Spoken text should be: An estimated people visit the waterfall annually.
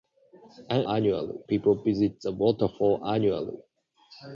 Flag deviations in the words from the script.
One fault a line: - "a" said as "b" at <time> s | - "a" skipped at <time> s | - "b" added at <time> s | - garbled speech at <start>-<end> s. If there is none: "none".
- "estimated" said as "annually" at 0.9 s